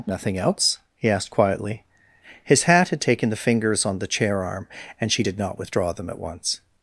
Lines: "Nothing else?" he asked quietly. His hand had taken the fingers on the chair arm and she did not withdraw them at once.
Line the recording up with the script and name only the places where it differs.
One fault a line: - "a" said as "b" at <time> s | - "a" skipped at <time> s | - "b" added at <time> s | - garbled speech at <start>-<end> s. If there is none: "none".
- "hand" said as "hat" at 2.6 s